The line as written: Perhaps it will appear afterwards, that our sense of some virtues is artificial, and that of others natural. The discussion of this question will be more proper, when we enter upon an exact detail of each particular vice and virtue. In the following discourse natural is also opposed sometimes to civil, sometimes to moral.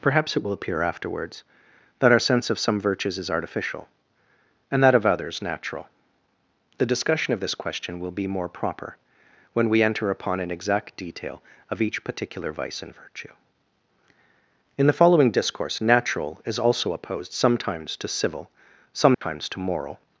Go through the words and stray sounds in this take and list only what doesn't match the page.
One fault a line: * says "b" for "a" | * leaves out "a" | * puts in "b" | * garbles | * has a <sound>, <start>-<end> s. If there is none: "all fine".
* has a dropout, 19.1-19.2 s